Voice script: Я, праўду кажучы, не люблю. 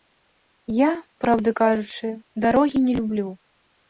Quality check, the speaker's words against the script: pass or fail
fail